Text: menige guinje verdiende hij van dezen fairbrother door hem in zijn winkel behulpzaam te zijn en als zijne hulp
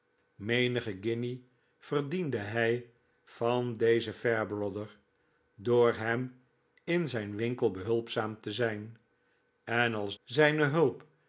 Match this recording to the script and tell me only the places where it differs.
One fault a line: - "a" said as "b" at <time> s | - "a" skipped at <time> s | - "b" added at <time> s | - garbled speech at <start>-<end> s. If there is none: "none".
none